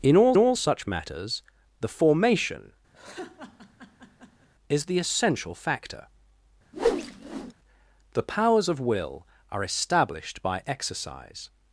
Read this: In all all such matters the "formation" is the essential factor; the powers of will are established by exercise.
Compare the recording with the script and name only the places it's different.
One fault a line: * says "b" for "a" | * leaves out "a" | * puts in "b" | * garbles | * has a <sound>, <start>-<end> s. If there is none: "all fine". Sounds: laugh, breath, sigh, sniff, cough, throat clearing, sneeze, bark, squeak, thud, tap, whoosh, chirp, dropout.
* has a laugh, 2.9-4.5 s
* has a whoosh, 6.7-7.5 s